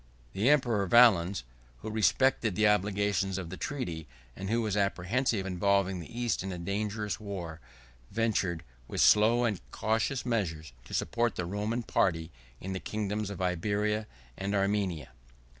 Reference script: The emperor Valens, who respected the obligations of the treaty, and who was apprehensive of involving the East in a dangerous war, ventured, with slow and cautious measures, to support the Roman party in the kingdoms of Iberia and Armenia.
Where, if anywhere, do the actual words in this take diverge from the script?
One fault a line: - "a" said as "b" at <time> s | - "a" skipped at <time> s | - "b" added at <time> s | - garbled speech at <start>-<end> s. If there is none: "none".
- "of" skipped at 5.5 s